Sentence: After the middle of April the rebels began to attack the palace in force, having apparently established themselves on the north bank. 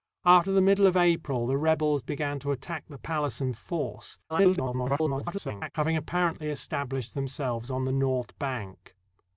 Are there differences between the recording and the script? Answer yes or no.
yes